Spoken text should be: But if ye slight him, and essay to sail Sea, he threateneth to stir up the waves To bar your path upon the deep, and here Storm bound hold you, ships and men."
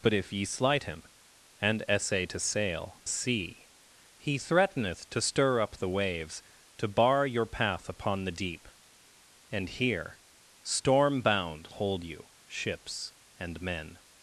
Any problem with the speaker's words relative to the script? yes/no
no